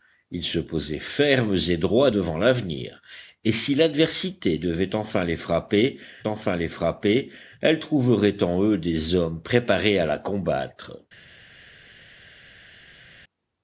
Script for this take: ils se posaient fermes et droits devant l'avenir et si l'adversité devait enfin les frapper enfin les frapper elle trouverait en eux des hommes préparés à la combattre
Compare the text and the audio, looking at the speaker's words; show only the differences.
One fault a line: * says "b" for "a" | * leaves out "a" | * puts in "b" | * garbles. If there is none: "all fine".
all fine